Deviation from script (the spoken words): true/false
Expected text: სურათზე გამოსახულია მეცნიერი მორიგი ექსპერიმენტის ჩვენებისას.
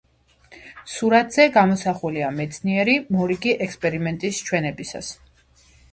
false